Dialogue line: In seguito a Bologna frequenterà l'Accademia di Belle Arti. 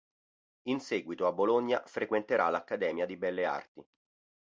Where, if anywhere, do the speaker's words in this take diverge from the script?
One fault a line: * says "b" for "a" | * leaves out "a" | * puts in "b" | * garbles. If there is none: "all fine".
all fine